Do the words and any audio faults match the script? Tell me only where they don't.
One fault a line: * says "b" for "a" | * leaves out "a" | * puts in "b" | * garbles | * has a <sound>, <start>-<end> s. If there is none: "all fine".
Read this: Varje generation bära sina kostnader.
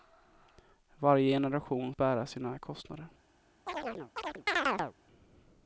* has a chirp, 3.7-4.9 s